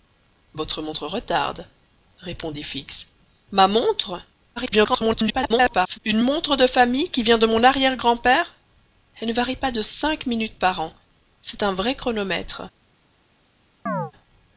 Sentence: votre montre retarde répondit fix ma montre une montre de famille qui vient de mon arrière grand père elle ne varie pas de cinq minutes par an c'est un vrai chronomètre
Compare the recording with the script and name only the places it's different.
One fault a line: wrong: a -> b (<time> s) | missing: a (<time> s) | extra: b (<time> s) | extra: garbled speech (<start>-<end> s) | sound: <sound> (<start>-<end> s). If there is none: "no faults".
extra: garbled speech (4.6-6.0 s)
sound: chirp (13.9-14.1 s)